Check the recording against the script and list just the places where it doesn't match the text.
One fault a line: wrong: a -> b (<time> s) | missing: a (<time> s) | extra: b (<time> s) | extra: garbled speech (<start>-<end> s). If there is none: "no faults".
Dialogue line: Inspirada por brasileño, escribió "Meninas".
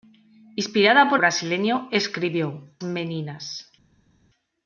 no faults